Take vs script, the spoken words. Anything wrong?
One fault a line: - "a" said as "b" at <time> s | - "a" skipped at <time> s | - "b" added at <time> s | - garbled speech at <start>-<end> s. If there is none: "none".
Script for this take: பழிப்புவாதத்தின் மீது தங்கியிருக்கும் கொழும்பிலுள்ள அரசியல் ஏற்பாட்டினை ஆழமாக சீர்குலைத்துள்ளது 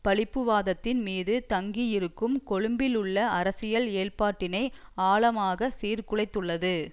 none